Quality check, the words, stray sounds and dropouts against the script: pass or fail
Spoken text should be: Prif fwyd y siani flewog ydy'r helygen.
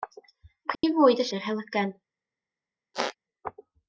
fail